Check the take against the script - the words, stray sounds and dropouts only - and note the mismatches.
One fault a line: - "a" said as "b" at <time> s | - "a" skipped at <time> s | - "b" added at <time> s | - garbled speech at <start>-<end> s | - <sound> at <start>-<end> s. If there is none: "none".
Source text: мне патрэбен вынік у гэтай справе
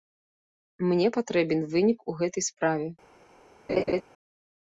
- laugh at 3.7-4.0 s